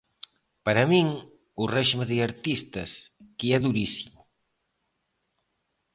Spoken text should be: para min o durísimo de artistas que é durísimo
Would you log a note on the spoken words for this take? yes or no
yes